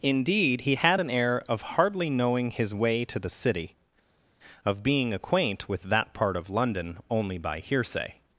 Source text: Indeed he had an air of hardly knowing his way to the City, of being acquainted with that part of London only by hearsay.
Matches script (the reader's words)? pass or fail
fail